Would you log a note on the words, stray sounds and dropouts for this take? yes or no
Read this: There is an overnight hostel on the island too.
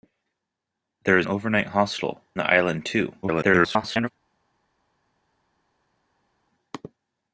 yes